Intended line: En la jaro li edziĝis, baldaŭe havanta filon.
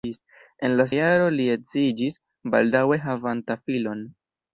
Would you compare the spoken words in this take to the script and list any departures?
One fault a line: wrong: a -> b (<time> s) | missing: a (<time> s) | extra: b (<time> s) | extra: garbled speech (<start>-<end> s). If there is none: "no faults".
no faults